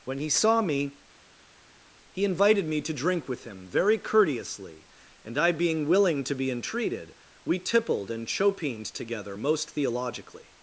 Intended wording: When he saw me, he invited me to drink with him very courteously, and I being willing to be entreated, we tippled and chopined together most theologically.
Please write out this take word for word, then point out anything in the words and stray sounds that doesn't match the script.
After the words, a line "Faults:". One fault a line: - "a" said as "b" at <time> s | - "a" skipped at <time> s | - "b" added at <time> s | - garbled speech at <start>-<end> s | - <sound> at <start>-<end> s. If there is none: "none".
When he saw me, he invited me to drink with him very courteously, and I being willing to be entreated, we tippled and chopined together most theologically.
Faults:
none